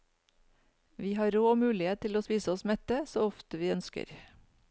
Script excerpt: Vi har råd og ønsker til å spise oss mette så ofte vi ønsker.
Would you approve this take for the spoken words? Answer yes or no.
no